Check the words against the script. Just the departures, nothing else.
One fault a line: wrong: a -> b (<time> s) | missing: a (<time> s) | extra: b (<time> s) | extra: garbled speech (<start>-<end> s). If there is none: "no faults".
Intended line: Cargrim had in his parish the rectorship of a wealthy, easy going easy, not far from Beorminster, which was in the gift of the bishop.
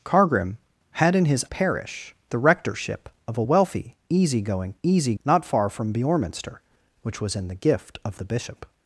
no faults